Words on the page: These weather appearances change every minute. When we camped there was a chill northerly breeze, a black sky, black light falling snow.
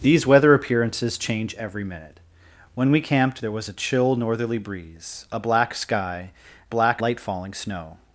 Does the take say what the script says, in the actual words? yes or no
yes